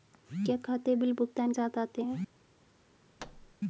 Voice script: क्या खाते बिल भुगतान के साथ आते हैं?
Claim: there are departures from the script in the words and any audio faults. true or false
true